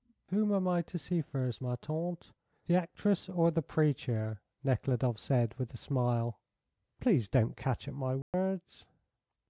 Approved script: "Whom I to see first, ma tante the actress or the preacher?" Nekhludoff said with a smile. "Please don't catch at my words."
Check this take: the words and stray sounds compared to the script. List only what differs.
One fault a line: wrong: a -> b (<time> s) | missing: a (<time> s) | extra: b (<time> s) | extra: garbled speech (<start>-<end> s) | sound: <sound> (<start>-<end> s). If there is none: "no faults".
extra: am (0.5 s)
sound: dropout (8.2-8.3 s)